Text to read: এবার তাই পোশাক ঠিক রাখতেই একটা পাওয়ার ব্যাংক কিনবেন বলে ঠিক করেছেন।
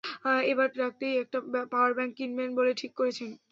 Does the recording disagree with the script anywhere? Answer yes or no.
yes